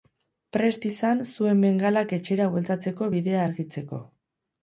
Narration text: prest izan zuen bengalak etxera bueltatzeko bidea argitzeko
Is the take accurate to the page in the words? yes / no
yes